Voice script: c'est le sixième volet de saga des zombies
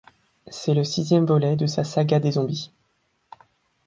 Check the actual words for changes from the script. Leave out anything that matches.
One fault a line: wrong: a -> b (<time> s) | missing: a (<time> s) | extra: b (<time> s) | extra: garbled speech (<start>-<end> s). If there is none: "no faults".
extra: sa (1.7 s)